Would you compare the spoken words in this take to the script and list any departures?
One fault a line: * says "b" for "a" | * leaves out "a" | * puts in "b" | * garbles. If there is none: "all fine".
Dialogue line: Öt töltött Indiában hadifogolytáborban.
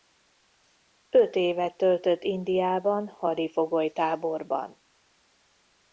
* puts in "évet"